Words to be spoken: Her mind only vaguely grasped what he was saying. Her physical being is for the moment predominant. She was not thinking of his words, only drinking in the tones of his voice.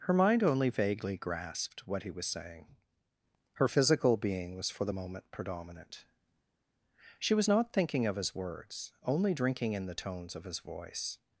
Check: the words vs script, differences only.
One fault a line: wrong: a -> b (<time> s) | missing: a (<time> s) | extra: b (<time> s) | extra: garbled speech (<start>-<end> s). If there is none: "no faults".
wrong: is -> was (4.6 s)